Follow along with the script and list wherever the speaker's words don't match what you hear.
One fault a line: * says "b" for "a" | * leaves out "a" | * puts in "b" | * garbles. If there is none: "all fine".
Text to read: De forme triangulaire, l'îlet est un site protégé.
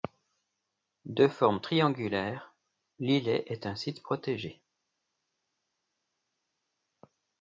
all fine